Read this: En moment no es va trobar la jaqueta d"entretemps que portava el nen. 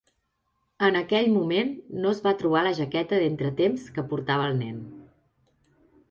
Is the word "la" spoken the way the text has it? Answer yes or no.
yes